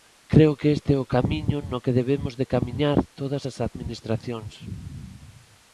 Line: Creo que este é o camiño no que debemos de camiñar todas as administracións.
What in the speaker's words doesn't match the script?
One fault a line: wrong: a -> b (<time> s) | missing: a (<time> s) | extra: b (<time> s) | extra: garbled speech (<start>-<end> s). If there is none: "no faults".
no faults